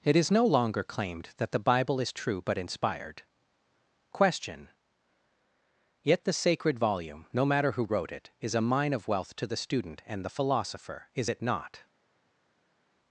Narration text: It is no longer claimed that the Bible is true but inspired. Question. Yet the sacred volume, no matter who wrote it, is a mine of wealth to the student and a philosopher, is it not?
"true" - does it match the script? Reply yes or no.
yes